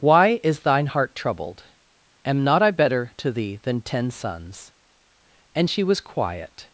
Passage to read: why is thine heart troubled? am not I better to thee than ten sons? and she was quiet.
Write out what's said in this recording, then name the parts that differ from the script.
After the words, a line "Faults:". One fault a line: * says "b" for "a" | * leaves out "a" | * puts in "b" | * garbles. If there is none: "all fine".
why is thine heart troubled? am not I better to thee than ten sons? and she was quiet.
Faults:
all fine